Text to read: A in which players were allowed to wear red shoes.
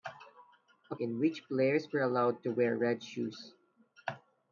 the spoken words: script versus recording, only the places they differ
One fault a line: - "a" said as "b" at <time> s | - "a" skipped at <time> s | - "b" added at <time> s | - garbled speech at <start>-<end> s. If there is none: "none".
none